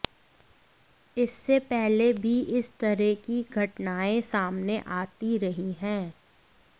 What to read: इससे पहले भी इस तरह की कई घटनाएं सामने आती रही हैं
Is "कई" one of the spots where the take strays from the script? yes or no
yes